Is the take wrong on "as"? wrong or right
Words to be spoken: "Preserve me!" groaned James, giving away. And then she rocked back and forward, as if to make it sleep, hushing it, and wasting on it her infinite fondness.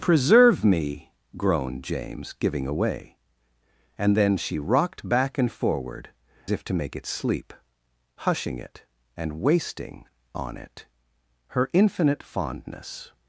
wrong